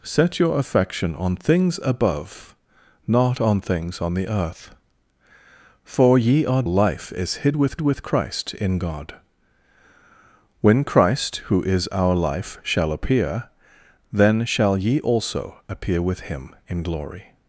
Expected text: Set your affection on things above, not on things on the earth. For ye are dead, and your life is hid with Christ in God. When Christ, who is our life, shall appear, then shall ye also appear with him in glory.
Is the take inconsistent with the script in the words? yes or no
yes